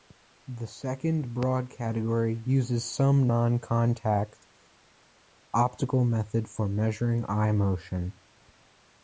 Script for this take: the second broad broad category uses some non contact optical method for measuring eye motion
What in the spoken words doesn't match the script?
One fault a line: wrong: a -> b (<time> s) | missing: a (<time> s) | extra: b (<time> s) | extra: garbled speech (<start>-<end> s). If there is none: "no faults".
missing: broad (1.7 s)